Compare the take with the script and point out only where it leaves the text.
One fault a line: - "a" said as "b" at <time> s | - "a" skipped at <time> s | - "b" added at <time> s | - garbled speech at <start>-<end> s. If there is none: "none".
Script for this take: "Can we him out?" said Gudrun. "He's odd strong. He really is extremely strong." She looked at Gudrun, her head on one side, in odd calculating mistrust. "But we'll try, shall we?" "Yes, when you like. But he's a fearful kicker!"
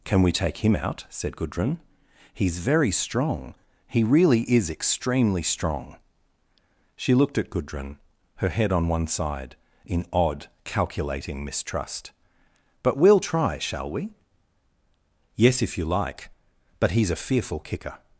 - "take" added at 0.3 s
- "odd" said as "very" at 2.6 s
- "when" said as "if" at 15.6 s